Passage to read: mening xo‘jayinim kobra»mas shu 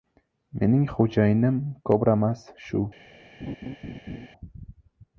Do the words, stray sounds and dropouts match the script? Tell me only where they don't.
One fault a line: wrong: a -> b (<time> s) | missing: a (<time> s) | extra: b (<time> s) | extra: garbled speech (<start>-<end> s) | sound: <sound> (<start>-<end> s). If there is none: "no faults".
sound: laugh (3.4-4.3 s)